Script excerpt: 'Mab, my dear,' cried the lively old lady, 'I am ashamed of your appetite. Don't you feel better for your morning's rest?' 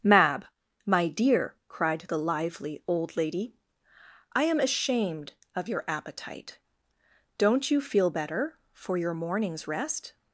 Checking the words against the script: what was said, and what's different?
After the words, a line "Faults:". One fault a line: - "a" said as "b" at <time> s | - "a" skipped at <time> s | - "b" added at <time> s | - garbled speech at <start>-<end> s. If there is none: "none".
'Mab, my dear,' cried the lively old lady, 'I am ashamed of your appetite. Don't you feel better for your morning's rest?'
Faults:
none